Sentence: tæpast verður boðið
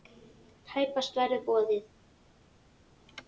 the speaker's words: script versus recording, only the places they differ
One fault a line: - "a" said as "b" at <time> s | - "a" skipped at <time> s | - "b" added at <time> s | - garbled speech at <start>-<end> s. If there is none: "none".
none